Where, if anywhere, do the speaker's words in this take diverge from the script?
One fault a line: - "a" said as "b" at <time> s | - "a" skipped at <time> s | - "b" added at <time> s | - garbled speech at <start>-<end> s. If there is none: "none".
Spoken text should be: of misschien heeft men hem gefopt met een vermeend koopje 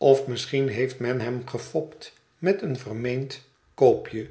none